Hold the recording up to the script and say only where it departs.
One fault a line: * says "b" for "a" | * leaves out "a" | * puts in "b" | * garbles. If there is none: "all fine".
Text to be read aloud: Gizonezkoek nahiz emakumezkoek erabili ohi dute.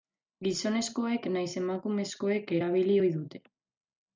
all fine